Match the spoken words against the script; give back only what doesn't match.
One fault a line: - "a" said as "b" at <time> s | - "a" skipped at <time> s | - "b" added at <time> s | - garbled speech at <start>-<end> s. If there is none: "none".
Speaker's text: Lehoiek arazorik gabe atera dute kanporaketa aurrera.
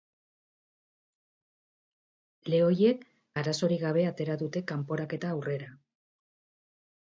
none